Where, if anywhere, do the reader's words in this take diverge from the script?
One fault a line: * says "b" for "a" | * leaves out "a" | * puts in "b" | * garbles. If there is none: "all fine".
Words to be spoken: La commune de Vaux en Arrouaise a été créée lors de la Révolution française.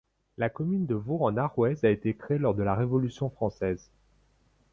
all fine